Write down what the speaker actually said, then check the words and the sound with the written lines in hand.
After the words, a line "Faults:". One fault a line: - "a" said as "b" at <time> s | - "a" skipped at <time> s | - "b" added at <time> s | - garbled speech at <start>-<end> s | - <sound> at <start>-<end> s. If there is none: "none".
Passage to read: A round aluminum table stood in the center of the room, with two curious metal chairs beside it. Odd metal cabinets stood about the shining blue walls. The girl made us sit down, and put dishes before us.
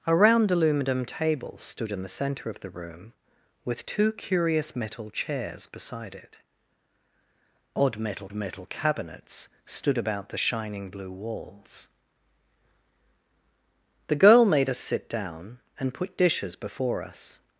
A round aluminum table stood in the center of the room, with two curious metal chairs beside it. Odd metal metal cabinets stood about the shining blue walls. The girl made us sit down, and put dishes before us.
Faults:
- "metal" added at 8.3 s